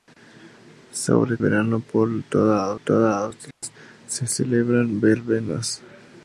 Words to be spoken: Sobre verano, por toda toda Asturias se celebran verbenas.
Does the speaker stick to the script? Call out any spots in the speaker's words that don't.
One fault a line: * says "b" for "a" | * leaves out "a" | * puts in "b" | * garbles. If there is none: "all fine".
all fine